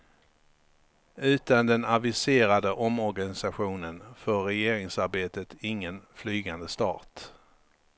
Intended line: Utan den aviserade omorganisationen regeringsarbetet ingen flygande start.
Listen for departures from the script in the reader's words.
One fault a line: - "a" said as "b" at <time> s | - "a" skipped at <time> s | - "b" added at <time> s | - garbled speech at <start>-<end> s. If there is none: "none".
- "får" added at 4.2 s